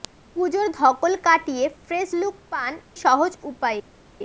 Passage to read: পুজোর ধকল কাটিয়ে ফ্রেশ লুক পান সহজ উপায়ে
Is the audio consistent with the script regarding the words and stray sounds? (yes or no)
yes